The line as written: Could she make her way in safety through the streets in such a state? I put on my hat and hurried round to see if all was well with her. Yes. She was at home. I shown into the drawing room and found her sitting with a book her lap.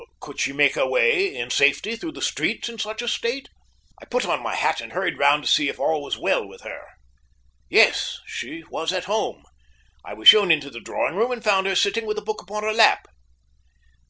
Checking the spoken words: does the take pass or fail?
fail